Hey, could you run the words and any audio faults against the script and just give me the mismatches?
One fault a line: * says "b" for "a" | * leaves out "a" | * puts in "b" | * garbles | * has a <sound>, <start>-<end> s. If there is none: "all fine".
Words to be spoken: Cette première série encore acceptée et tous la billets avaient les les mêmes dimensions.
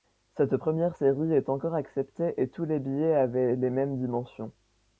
* puts in "est"
* says "les" for "la"
* leaves out "les"